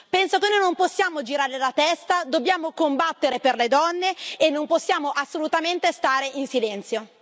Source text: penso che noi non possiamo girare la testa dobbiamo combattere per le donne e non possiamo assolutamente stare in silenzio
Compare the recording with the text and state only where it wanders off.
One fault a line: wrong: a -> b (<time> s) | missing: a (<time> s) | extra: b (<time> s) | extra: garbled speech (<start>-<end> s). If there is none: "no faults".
no faults